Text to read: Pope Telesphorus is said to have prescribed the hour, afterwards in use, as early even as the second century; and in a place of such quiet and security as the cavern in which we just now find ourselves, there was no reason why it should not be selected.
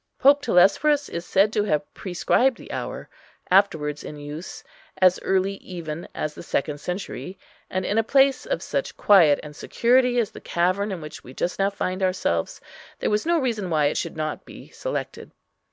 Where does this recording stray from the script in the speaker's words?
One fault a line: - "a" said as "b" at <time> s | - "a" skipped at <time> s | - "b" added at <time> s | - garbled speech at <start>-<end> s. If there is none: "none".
none